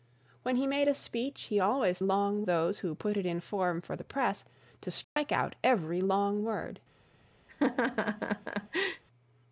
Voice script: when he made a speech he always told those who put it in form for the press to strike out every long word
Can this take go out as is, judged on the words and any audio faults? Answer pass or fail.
fail